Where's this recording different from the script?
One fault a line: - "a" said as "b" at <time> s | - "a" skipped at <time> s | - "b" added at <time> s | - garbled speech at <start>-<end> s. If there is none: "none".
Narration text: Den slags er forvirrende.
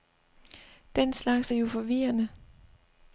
- "jo" added at 1.5 s